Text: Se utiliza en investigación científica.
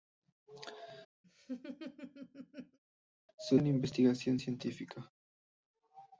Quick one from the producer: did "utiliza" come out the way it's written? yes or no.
no